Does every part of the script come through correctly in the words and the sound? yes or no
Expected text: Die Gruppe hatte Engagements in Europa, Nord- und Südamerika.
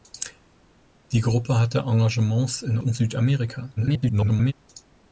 no